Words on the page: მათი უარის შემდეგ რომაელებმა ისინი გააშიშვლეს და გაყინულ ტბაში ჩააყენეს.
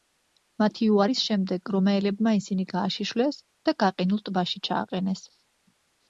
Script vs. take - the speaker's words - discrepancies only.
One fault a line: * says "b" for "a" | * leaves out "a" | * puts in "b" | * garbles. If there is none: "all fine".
all fine